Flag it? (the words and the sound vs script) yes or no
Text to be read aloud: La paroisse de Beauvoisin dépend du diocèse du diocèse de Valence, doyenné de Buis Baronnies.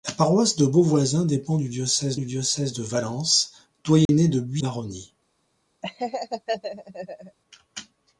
yes